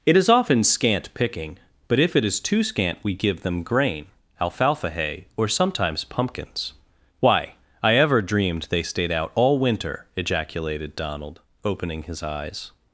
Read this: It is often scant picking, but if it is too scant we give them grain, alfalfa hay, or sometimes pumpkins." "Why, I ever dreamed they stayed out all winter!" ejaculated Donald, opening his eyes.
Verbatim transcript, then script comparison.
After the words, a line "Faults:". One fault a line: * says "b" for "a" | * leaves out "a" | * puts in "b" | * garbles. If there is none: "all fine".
It is often scant picking, but if it is too scant we give them grain, alfalfa hay, or sometimes pumpkins." "Why, I ever dreamed they stayed out all winter!" ejaculated Donald, opening his eyes.
Faults:
all fine